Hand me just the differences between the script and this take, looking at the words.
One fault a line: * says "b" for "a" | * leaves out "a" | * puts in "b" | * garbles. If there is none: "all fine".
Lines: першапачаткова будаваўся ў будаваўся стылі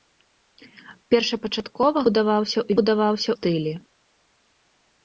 all fine